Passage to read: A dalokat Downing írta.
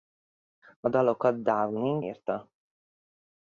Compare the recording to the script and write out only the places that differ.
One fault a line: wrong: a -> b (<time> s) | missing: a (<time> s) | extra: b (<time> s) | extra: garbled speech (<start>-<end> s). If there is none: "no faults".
no faults